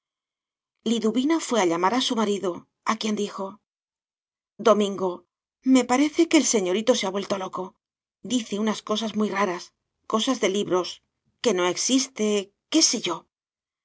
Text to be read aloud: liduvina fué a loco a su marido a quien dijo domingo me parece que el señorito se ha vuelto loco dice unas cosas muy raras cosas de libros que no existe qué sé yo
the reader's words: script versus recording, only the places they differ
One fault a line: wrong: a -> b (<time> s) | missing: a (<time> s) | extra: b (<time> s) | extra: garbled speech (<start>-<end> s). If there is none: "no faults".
wrong: loco -> llamar (1.7 s)